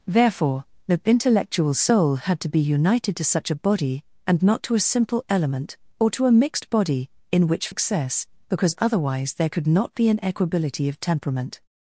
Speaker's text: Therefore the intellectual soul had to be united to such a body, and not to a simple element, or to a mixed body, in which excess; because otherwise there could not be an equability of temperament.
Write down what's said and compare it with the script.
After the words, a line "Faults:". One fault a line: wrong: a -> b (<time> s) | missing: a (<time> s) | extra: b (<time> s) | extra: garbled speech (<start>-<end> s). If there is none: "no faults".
Therefore the intellectual soul had to be united to such a body, and not to a simple element, or to a mixed body, in which excess; because otherwise there could not be an equability of temperament.
Faults:
no faults